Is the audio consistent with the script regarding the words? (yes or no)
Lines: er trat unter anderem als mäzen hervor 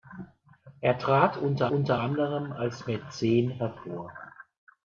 no